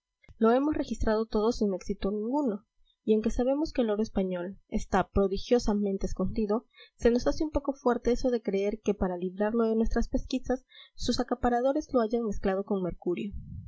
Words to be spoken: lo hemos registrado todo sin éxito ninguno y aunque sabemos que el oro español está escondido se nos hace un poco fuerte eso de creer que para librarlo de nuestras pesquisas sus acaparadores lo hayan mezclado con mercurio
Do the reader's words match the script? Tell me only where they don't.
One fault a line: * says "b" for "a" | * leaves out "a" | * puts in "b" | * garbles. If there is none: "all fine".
* puts in "prodigiosamente"